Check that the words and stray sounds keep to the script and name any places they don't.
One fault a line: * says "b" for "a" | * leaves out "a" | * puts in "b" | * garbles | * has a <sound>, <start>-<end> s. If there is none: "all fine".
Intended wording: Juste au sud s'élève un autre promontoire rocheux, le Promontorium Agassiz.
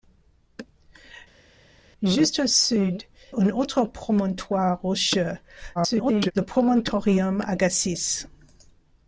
* leaves out "s'élève"
* garbles